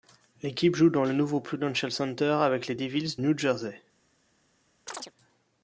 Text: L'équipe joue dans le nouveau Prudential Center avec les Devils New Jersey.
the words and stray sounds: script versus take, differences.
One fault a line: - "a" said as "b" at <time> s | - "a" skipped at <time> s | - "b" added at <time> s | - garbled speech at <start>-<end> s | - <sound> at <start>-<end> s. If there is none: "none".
- chirp at 4.9-5.1 s